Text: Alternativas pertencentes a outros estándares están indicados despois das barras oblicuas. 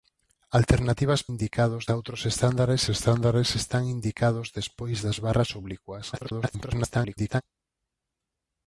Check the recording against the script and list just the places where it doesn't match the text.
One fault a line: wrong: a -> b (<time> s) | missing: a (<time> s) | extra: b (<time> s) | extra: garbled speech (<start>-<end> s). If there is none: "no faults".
wrong: pertencentes -> indicados (1.3 s)
extra: estándares (2.9 s)
extra: garbled speech (6.1-7.4 s)